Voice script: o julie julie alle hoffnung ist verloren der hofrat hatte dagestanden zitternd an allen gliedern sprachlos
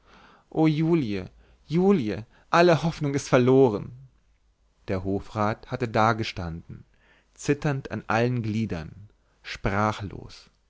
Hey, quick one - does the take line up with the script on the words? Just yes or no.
yes